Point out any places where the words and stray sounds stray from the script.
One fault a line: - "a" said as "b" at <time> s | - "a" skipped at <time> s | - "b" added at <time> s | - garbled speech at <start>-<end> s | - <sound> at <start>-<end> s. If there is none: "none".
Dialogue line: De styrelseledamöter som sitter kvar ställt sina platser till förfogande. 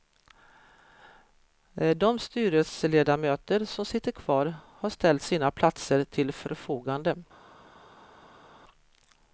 - "har" added at 4.7 s